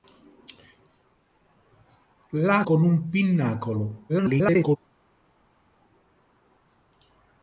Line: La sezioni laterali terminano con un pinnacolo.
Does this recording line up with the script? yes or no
no